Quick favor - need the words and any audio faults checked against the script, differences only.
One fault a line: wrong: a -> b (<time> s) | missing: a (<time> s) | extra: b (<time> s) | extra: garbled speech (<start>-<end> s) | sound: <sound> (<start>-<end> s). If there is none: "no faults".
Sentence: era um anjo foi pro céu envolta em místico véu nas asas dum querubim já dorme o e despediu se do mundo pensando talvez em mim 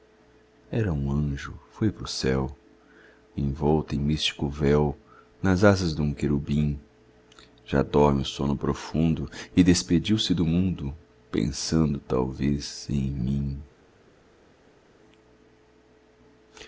extra: sono profundo (8.2 s)